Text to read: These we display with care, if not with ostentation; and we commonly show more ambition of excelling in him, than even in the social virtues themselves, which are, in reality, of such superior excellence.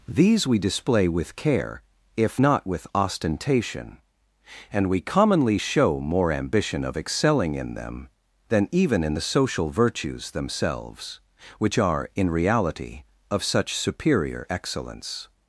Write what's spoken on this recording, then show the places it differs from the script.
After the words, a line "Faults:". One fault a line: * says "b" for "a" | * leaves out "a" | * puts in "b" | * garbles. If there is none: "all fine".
These we display with care, if not with ostentation; and we commonly show more ambition of excelling in them, than even in the social virtues themselves, which are, in reality, of such superior excellence.
Faults:
* says "them" for "him"